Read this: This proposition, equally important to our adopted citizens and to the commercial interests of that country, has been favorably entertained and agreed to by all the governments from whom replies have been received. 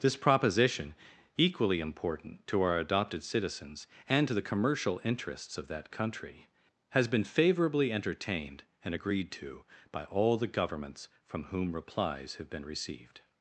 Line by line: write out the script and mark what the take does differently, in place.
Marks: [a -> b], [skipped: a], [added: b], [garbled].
This proposition, equally important to our adopted citizens and to the commercial interests of that country, has been favorably entertained and agreed to by all the governments from whom replies have been received.